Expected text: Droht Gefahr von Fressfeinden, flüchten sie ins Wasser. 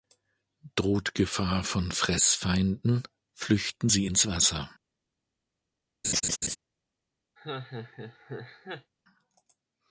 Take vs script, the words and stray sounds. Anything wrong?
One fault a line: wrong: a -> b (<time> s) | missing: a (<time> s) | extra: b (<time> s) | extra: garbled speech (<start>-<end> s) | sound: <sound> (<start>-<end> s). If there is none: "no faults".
sound: laugh (6.0-6.6 s)
sound: laugh (7.4-8.9 s)